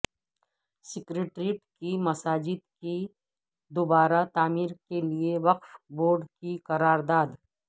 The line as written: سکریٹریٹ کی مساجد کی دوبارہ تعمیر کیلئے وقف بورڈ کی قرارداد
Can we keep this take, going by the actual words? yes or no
yes